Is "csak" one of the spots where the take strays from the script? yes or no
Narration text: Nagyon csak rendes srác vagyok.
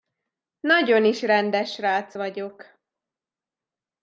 yes